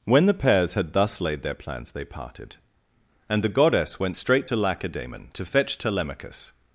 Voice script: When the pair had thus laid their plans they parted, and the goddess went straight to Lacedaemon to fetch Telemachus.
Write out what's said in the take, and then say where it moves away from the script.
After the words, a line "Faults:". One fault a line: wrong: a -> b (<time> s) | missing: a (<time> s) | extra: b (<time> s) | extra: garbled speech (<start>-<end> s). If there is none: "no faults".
When the pairs had thus laid their plans they parted, and the goddess went straight to Lacedaemon to fetch Telemachus.
Faults:
wrong: pair -> pairs (0.3 s)